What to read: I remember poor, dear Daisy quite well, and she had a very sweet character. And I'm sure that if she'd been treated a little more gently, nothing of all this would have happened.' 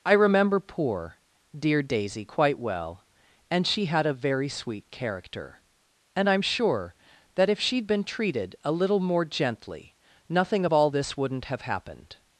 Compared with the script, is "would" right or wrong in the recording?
wrong